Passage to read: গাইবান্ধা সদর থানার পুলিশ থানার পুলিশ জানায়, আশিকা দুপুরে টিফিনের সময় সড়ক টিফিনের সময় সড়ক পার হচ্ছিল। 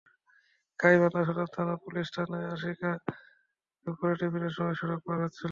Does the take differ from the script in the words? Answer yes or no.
yes